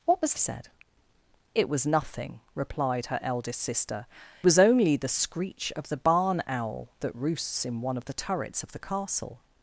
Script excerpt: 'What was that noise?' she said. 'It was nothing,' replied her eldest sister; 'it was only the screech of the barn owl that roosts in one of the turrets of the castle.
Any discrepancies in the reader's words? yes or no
yes